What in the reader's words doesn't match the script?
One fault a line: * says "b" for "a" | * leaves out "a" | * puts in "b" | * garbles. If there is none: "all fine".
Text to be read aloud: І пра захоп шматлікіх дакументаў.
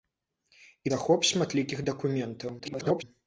* leaves out "пра"
* garbles